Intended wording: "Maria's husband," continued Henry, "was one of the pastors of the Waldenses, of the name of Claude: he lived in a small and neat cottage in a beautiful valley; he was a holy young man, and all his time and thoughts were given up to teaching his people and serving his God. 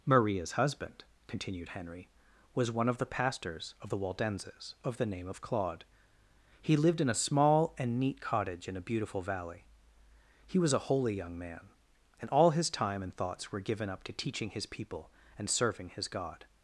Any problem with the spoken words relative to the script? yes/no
no